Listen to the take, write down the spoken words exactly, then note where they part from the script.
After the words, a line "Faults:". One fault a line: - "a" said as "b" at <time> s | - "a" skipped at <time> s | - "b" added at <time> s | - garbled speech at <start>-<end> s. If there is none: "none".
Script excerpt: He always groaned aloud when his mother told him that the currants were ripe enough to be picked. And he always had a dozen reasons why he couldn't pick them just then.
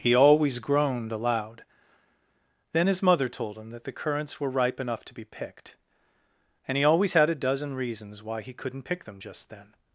He always groaned aloud then his mother told him that the currants were ripe enough to be picked. And he always had a dozen reasons why he couldn't pick them just then.
Faults:
- "when" said as "then" at 2.7 s